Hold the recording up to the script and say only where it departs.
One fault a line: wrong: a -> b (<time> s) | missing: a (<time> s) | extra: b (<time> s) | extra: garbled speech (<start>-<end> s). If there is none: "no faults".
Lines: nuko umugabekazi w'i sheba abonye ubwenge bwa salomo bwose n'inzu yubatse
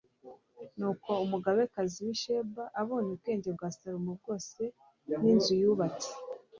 no faults